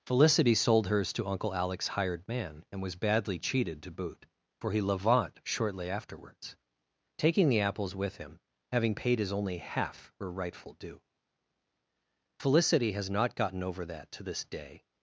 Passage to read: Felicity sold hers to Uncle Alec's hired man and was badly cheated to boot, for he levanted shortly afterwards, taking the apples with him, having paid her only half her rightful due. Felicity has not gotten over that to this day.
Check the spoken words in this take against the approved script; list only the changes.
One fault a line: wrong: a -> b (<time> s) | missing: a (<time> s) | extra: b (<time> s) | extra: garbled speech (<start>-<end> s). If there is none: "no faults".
wrong: levanted -> levant (4.8 s)
wrong: her -> his (9.2 s)